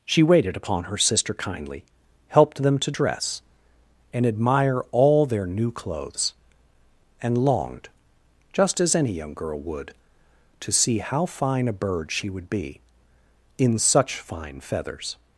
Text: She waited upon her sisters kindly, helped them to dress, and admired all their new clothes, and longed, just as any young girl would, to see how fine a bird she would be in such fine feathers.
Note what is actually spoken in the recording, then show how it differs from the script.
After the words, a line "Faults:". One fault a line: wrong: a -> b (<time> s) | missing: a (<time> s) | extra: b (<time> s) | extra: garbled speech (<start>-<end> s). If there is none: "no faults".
She waited upon her sister kindly, helped them to dress, and admire all their new clothes, and longed, just as any young girl would, to see how fine a bird she would be in such fine feathers.
Faults:
wrong: sisters -> sister (1.0 s)
wrong: admired -> admire (4.2 s)